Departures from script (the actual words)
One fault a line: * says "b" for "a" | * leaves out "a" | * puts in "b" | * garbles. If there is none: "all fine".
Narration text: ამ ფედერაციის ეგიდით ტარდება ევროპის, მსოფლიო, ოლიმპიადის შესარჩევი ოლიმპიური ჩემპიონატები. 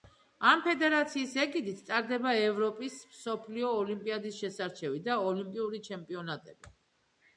* puts in "და"